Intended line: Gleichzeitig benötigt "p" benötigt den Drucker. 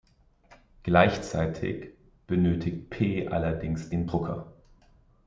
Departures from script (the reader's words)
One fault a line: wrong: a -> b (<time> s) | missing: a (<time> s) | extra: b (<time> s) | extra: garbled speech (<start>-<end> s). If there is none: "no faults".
wrong: benötigt -> allerdings (3.3 s)